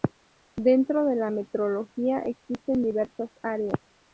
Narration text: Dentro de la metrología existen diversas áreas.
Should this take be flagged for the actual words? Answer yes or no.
no